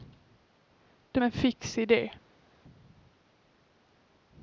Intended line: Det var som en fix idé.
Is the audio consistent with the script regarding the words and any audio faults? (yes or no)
no